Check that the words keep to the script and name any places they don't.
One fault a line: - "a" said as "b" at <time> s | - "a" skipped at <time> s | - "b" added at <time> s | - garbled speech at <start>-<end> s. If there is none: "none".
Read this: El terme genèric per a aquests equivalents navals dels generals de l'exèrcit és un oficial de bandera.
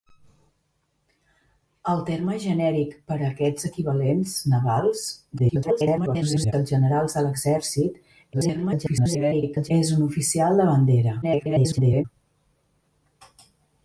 - garbled speech at 5.4-6.5 s
- garbled speech at 8.3-9.7 s
- garbled speech at 11.2-12.0 s